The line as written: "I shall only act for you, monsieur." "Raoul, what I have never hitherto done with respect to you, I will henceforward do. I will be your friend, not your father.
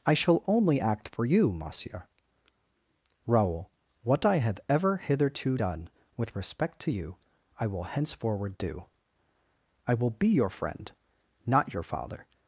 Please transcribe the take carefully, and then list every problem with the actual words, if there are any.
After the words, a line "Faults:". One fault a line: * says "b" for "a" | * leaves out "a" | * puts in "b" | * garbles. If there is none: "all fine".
"I shall only act for you, monsieur." "Raoul, what I have ever hitherto done with respect to you, I will henceforward do. I will be your friend, not your father.
Faults:
* says "ever" for "never"